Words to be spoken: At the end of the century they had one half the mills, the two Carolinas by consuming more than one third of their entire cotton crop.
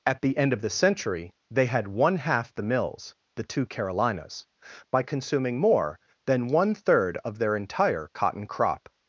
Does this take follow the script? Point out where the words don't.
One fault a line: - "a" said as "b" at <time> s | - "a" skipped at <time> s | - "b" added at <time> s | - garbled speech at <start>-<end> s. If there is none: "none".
none